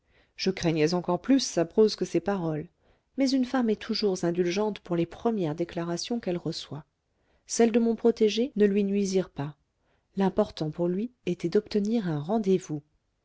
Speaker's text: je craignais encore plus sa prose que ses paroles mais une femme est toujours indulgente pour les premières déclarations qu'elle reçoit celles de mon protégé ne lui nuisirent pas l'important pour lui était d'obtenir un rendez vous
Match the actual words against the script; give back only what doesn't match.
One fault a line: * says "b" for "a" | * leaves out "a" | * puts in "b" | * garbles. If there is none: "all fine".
all fine